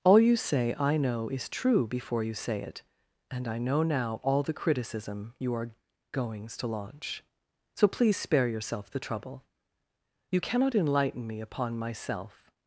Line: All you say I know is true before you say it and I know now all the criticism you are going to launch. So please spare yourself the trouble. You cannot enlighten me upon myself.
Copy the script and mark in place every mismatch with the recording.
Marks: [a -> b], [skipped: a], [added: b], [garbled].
All you say I know is true before you say it and I know now all the criticism you are [going -> goings] to launch. So please spare yourself the trouble. You cannot enlighten me upon myself.